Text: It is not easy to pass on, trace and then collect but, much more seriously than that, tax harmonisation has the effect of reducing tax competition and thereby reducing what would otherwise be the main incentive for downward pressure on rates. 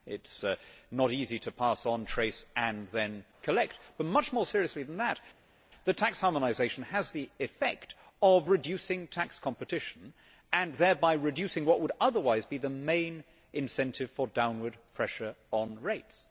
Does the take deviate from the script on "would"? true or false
false